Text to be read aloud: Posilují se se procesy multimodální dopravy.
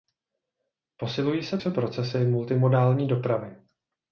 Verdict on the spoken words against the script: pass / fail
pass